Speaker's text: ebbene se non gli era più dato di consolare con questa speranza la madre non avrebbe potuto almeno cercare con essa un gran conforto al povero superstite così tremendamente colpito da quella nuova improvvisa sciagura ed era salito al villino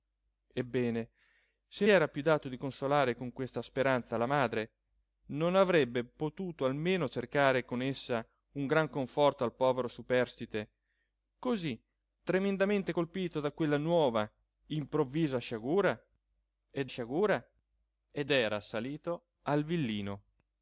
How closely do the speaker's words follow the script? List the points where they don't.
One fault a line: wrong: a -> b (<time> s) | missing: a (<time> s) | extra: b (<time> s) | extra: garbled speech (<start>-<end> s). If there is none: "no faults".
missing: non gli (1.9 s)
extra: sciagura ed (16.8 s)